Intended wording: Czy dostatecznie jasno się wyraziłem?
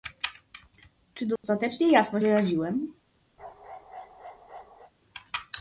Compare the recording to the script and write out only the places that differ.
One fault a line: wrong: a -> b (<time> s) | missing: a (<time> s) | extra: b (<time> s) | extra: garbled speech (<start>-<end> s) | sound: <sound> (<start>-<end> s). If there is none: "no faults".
sound: dropout (1.4-1.4 s)
missing: się (2.2 s)
sound: bark (3.4-4.9 s)